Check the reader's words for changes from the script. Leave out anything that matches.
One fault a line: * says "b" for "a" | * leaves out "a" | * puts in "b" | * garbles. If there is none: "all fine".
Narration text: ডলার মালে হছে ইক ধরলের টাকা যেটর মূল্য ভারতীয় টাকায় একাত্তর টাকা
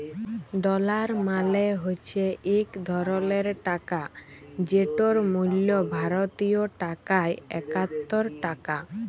all fine